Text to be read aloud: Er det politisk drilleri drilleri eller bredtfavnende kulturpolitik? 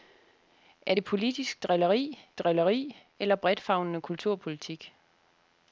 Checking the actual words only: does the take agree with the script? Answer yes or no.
yes